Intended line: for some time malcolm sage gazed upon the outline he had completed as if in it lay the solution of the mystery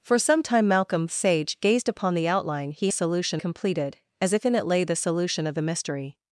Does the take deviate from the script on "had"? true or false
true